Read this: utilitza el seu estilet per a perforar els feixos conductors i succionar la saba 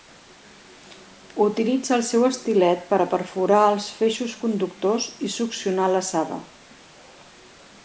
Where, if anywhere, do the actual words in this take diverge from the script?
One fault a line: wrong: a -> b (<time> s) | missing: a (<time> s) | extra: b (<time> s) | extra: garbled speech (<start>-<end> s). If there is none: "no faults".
no faults